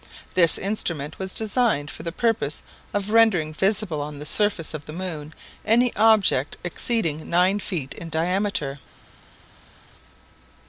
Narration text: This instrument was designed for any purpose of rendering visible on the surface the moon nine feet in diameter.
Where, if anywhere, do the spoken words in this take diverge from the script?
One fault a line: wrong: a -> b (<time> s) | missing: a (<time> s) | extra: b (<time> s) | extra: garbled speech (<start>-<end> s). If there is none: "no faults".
wrong: any -> the (2.0 s)
extra: of (4.7 s)
extra: any object exceeding (5.6 s)